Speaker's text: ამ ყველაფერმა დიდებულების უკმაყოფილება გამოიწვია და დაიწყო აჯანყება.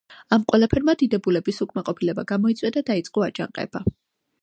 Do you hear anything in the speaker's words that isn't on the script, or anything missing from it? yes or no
no